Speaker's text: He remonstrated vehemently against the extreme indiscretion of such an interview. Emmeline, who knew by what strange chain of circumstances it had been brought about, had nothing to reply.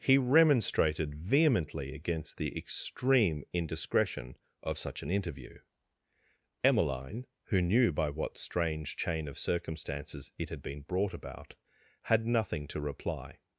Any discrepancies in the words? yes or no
no